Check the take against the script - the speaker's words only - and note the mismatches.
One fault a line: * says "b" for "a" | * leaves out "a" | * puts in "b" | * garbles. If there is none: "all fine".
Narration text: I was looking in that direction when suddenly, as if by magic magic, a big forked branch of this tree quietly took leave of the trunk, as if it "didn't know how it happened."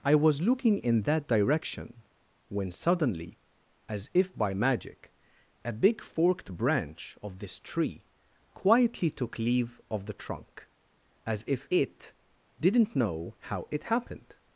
* leaves out "magic"